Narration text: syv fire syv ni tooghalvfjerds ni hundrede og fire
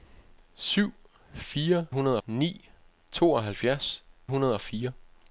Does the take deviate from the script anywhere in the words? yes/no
yes